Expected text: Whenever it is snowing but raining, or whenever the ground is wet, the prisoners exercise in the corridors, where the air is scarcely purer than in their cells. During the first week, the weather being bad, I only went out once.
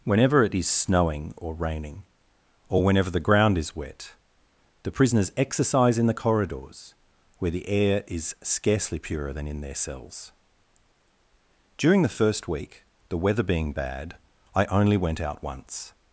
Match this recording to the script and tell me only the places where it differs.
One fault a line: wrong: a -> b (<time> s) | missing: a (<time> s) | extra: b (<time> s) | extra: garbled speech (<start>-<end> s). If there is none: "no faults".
wrong: but -> or (1.4 s)